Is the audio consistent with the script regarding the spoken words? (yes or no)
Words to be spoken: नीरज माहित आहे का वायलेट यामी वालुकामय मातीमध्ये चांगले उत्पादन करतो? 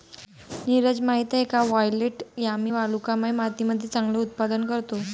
yes